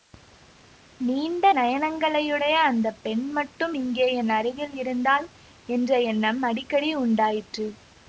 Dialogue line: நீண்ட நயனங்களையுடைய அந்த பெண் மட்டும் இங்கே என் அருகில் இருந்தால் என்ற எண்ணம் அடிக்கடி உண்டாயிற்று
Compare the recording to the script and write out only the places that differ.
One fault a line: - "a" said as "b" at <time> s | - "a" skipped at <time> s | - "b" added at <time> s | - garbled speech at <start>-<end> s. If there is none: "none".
none